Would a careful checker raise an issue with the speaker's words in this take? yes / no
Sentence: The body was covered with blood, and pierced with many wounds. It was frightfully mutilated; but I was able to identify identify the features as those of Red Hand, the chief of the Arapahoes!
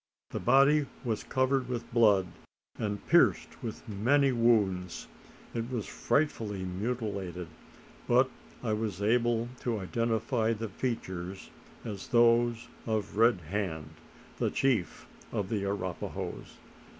yes